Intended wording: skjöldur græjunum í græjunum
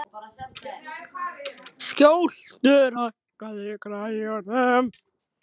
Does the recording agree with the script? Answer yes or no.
no